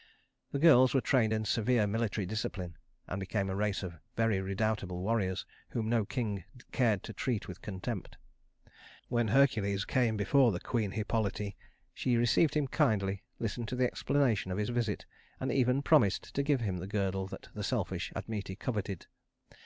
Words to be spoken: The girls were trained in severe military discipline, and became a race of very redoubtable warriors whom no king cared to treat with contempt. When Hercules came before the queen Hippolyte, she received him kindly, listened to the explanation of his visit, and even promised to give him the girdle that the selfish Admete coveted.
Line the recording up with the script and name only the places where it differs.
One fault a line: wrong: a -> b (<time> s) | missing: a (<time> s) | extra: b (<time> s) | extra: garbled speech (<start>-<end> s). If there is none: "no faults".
no faults